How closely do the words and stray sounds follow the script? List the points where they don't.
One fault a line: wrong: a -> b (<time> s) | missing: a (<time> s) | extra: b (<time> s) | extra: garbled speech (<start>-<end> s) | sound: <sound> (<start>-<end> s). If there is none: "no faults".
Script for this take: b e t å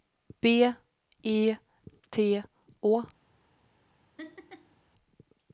sound: laugh (4.2-4.8 s)